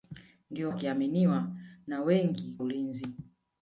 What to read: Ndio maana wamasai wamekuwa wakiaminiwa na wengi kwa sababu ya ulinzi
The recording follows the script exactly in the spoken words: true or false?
false